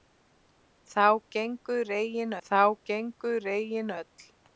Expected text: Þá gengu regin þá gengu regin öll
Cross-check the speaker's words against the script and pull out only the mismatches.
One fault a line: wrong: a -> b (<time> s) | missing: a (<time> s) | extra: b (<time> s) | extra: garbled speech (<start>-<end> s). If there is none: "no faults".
no faults